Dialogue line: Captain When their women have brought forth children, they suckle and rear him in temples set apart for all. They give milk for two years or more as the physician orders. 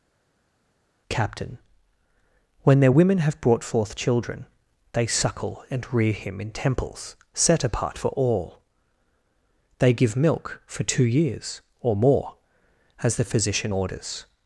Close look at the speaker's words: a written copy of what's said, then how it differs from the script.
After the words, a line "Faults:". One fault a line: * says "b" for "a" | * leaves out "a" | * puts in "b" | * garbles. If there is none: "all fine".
Captain When their women have brought forth children, they suckle and rear him in temples set apart for all. They give milk for two years or more as the physician orders.
Faults:
all fine